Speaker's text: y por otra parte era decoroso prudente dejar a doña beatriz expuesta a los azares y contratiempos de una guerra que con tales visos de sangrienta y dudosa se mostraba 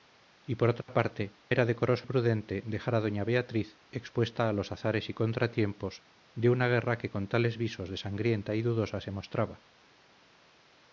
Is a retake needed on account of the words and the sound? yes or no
yes